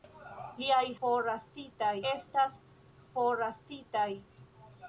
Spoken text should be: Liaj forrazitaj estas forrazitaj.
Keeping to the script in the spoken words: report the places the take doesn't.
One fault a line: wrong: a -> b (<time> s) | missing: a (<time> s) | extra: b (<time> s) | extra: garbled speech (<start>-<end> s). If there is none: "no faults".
no faults